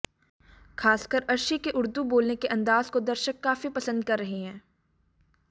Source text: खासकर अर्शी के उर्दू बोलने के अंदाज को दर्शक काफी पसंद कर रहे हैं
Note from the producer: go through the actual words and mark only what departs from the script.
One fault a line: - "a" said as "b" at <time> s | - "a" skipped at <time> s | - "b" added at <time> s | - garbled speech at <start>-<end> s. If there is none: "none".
none